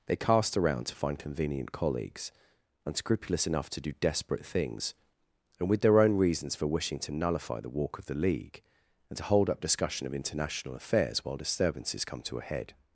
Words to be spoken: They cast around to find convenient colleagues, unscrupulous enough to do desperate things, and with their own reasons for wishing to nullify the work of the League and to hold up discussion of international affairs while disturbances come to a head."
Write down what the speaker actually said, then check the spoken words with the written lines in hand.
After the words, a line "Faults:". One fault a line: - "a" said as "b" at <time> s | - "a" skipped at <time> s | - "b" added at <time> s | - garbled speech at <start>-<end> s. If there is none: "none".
They cast around to find convenient colleagues, unscrupulous enough to do desperate things, and with their own reasons for wishing to nullify the walk of the League and to hold up discussion of international affairs while disturbances come to a head."
Faults:
- "work" said as "walk" at 7.7 s